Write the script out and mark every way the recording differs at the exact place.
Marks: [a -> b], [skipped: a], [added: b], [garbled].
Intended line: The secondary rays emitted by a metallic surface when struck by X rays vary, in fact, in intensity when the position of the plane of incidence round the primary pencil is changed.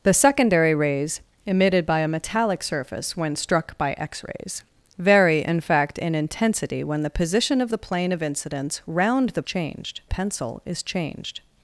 The secondary rays emitted by a metallic surface when struck by X rays vary, in fact, in intensity when the position of the plane of incidence round the [primary -> changed] pencil is changed.